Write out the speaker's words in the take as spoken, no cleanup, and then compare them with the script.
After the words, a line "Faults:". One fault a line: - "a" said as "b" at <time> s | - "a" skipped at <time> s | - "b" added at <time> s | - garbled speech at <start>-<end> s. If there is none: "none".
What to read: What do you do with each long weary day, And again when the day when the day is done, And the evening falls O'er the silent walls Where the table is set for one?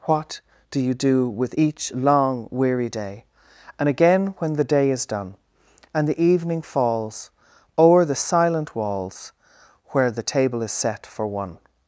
What do you do with each long weary day, And again when the day is done, And the evening falls O'er the silent walls Where the table is set for one?
Faults:
- "when the day" skipped at 4.9 s